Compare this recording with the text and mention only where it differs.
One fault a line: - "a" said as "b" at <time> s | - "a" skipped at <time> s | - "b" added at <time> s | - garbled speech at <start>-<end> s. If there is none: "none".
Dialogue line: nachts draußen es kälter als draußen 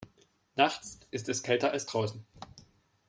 - "draußen" said as "ist" at 1.1 s